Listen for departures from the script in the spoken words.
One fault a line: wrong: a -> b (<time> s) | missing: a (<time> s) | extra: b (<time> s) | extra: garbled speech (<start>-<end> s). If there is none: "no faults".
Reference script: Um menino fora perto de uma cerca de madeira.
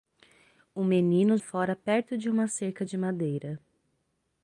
no faults